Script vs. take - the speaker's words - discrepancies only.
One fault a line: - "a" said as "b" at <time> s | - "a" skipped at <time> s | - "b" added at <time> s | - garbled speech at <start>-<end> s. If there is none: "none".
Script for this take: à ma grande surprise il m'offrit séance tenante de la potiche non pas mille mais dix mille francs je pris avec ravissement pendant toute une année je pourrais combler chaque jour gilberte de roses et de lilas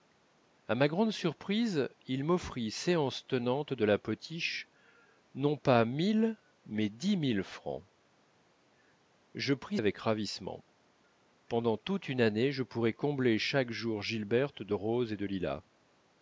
none